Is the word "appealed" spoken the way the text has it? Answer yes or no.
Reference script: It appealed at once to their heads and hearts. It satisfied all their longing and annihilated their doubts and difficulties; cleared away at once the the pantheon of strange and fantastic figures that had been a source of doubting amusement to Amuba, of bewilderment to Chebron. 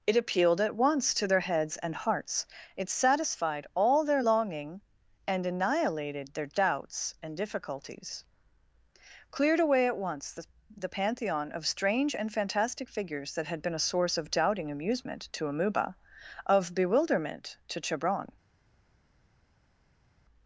yes